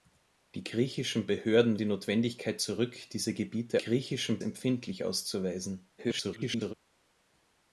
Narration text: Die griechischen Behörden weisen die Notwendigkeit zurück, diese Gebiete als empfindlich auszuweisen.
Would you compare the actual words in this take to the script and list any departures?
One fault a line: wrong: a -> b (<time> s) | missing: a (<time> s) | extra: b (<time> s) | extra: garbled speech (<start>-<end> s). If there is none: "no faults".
missing: weisen (1.8 s)
wrong: als -> griechischen (3.8 s)
extra: garbled speech (6.0-6.7 s)